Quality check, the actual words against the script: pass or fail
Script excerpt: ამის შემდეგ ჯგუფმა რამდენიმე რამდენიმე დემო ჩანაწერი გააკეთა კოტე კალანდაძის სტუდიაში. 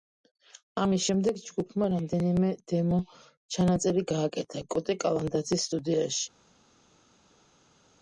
fail